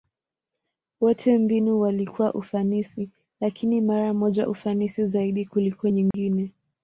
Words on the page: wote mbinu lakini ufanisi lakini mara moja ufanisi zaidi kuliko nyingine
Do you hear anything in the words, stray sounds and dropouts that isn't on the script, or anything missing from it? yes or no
yes